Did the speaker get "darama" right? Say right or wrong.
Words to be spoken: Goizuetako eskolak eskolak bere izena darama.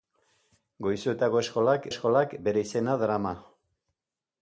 right